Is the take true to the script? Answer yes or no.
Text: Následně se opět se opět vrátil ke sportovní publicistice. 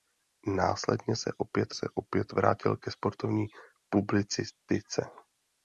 yes